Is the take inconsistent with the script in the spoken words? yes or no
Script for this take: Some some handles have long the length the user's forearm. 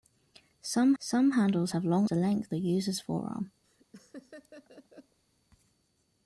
no